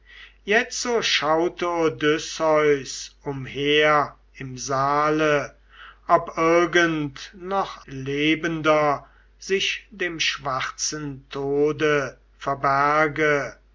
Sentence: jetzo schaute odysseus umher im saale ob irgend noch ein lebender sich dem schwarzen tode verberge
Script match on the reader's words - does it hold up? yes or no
no